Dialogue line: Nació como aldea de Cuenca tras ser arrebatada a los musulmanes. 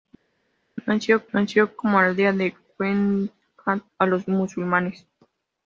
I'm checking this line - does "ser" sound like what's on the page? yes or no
no